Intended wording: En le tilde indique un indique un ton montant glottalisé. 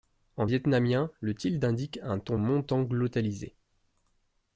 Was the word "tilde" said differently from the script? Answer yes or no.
no